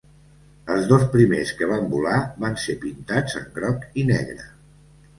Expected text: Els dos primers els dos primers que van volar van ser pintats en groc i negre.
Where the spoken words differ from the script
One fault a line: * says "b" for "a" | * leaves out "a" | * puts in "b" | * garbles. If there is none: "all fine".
* leaves out "els dos primers"